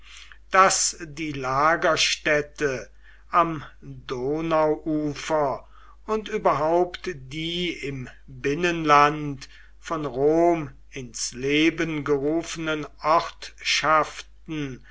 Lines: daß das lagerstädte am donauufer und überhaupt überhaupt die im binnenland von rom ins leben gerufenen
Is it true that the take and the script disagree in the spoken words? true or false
true